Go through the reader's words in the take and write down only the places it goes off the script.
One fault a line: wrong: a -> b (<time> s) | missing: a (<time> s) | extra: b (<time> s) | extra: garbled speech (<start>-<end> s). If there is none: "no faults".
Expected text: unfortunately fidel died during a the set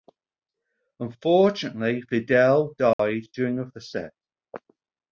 no faults